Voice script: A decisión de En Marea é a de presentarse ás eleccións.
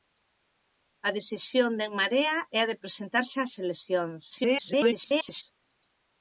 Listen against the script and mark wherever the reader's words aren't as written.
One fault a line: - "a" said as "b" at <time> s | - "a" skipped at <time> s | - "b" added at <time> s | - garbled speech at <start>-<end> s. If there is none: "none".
- garbled speech at 4.3-5.4 s